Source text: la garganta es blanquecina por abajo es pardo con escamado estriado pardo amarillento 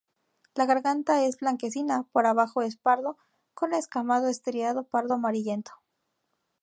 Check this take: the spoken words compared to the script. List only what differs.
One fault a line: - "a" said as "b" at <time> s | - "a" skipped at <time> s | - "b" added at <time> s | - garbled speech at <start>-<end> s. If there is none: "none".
none